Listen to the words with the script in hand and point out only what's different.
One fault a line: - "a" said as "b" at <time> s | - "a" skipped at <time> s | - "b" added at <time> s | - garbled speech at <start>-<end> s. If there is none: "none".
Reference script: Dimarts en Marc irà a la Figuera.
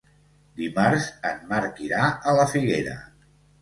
none